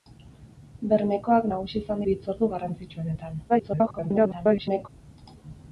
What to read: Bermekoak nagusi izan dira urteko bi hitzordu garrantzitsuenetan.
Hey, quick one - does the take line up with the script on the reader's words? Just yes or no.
no